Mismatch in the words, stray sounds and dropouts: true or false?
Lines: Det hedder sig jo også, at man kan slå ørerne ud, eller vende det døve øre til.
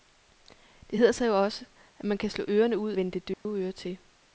true